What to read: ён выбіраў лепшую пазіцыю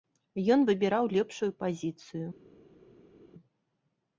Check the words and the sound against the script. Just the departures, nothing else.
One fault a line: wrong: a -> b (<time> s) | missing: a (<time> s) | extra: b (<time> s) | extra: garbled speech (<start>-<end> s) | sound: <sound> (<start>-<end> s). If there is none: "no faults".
no faults